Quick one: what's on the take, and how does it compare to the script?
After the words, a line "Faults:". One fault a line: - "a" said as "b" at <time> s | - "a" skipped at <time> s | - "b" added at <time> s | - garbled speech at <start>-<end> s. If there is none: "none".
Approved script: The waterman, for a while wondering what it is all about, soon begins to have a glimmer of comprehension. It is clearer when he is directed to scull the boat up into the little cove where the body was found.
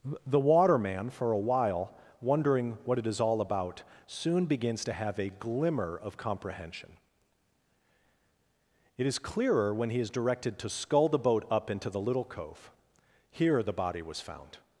The waterman, for a while wondering what it is all about, soon begins to have a glimmer of comprehension. It is clearer when he is directed to scull the boat up into the little cove here the body was found.
Faults:
- "where" said as "here" at 13.3 s